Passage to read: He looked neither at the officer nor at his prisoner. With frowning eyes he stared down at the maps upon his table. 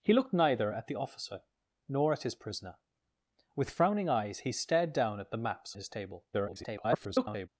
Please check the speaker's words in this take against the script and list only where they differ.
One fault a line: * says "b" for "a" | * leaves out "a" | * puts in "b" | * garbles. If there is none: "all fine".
* leaves out "upon"
* garbles